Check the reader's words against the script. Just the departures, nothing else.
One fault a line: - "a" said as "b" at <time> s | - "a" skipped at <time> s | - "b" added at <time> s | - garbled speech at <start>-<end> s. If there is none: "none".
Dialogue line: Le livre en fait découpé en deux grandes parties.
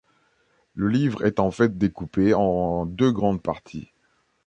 - "est" added at 1.2 s